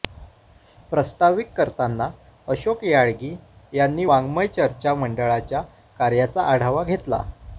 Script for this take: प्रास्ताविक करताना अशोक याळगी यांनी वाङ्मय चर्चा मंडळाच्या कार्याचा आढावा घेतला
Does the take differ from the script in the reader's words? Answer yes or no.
no